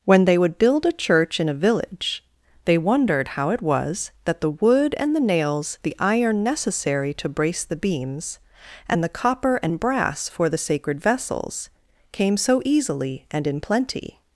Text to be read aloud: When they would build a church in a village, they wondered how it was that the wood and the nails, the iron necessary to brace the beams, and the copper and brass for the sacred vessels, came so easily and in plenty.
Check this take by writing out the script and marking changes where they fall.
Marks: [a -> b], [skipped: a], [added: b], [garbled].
When they would build a church in a village, they wondered how it was that the wood and the nails, the iron necessary to brace the beams, and the copper and brass for the sacred vessels, came so easily and in plenty.